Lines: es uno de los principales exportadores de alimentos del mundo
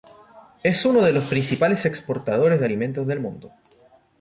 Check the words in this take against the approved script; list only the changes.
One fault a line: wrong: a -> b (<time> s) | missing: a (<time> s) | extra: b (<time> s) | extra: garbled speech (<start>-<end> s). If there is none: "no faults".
no faults